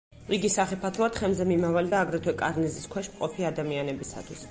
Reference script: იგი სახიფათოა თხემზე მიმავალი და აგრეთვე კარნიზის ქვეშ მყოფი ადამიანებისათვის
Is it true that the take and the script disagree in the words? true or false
false